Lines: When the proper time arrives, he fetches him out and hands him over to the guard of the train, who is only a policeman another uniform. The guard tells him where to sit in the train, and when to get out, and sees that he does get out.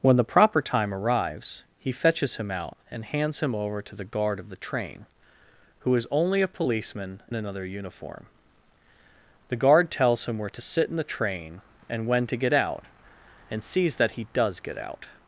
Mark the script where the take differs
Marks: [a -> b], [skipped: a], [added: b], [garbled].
When the proper time arrives, he fetches him out and hands him over to the guard of the train, who is only a policeman another uniform. The guard tells him where to sit in the train, and when to get out, and sees that he does get out.